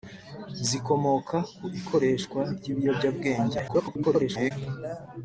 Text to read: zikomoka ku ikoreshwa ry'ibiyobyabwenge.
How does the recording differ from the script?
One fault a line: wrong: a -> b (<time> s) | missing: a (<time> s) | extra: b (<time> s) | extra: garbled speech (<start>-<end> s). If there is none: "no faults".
extra: garbled speech (3.7-4.5 s)